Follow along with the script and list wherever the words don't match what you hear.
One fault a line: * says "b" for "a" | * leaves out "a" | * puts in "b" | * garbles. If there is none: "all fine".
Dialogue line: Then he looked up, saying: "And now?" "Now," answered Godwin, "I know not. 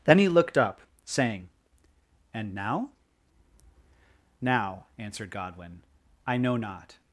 all fine